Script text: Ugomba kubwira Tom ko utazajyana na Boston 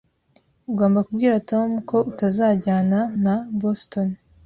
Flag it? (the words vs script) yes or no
no